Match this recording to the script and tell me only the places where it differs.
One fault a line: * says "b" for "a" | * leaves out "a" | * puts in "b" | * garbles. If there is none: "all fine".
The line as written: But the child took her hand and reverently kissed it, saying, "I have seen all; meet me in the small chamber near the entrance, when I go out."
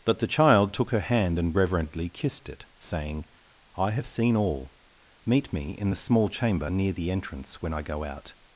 all fine